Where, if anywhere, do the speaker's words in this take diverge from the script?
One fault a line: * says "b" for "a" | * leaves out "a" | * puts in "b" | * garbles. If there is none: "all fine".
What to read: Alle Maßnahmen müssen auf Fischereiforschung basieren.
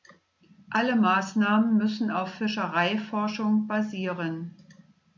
all fine